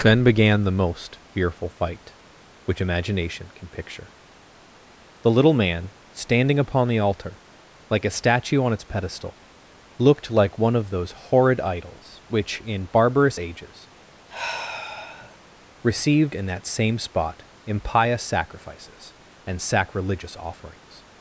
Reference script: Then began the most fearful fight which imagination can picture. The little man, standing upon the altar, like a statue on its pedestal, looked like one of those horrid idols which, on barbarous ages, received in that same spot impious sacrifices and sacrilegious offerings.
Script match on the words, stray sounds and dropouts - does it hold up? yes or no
no